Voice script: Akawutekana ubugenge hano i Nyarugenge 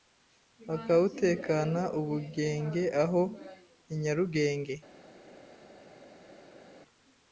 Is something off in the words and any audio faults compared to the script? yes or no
yes